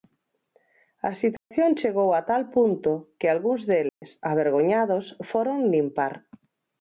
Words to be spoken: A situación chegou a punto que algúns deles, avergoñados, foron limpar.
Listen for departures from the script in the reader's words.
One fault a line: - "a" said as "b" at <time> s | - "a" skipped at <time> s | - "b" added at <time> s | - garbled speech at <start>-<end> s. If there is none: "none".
- "tal" added at 2.3 s